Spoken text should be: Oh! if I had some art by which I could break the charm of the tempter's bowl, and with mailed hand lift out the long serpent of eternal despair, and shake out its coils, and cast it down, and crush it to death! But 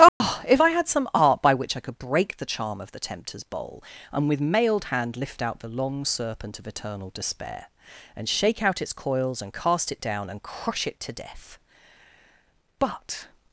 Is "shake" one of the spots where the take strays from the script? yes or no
no